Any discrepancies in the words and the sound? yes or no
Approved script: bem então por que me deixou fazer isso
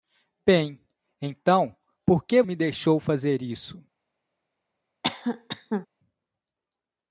yes